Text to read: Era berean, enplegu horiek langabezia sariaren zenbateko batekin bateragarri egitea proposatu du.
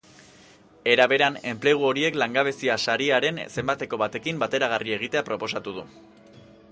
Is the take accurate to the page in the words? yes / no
yes